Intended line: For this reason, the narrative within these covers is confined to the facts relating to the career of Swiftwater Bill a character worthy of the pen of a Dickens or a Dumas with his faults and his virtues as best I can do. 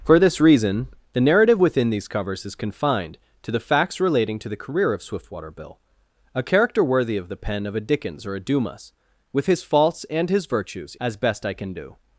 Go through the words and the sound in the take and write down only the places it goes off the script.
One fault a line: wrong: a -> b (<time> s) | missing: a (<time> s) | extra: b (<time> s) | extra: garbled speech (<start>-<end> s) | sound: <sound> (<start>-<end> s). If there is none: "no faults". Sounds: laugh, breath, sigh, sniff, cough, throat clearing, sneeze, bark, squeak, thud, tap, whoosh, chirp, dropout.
no faults